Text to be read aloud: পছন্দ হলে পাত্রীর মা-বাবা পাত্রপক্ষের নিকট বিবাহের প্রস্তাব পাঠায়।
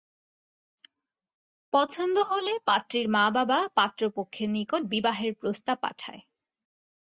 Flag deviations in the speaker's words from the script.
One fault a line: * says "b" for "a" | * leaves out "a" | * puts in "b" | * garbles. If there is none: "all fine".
all fine